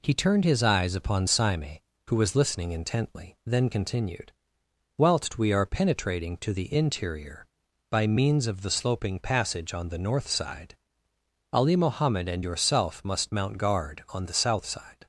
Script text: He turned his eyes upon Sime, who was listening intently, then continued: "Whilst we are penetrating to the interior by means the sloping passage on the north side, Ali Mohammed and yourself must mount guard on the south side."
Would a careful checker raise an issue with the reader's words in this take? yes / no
yes